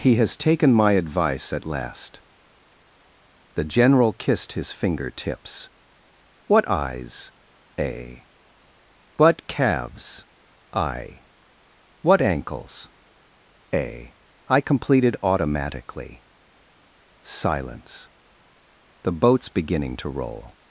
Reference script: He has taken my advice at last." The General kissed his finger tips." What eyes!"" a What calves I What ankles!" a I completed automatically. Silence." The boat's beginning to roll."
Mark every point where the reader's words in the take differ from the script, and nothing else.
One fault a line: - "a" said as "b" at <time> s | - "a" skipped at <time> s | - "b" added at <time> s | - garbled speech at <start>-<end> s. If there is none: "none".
none